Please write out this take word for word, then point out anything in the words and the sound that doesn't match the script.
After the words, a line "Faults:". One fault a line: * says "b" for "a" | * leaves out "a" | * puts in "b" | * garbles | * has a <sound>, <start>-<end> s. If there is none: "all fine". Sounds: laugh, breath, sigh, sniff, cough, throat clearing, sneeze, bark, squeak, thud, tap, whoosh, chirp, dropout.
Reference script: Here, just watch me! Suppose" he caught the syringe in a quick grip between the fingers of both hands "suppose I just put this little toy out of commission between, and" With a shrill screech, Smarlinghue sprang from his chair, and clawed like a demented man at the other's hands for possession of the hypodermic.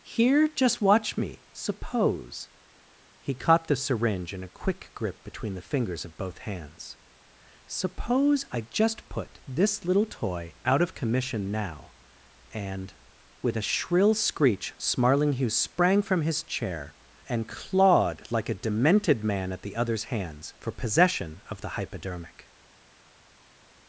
Here, just watch me! Suppose" he caught the syringe in a quick grip between the fingers of both hands "suppose I just put this little toy out of commission now, and" With a shrill screech, Smarlinghue sprang from his chair, and clawed like a demented man at the other's hands for possession of the hypodermic.
Faults:
* says "now" for "between"